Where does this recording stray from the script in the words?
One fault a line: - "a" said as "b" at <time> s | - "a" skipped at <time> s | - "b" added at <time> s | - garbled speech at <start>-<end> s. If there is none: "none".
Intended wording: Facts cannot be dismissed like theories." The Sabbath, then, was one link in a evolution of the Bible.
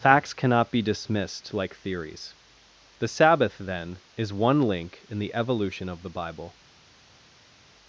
- "was" said as "is" at 4.1 s
- "a" said as "the" at 5.2 s